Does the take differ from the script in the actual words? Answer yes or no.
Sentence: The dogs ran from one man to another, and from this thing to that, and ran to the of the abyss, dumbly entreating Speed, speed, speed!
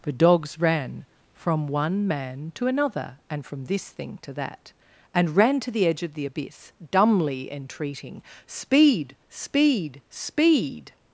yes